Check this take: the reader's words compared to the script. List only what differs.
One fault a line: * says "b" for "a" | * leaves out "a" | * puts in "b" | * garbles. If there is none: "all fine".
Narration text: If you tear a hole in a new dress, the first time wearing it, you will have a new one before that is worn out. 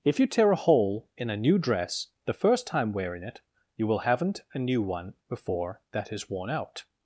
* says "haven't" for "have"